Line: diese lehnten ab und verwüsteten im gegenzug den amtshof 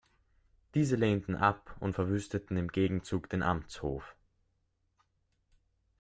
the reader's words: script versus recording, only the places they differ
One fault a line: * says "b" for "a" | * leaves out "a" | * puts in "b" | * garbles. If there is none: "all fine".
all fine